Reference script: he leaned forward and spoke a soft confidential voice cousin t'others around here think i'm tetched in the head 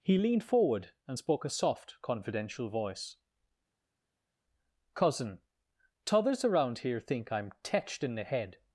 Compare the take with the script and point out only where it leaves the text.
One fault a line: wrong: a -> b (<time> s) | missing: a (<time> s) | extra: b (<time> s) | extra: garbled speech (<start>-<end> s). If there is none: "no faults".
no faults